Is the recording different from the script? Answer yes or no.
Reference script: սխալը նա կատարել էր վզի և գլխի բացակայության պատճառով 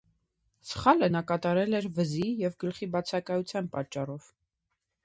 no